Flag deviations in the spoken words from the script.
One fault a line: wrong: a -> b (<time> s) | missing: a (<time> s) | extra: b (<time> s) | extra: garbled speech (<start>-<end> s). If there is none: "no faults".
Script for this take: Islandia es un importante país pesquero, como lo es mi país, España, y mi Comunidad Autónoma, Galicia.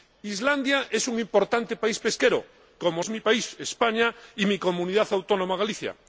missing: lo (3.0 s)